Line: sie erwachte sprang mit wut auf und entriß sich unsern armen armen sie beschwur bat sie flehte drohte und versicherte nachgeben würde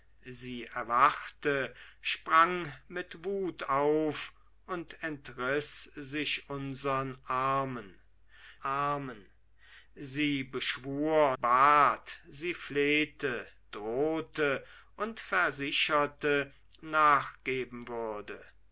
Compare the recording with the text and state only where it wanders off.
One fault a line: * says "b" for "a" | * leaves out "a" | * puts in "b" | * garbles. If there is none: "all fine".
all fine